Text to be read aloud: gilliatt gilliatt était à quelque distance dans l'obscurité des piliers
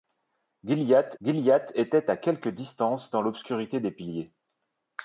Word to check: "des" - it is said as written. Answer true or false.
true